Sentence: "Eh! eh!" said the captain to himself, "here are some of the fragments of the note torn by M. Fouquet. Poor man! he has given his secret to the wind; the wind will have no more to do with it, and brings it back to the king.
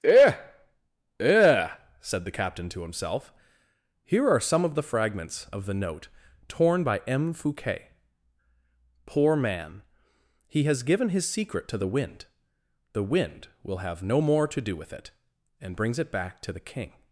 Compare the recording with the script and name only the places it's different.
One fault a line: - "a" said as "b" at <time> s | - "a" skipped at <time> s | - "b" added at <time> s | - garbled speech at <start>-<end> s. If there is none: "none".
none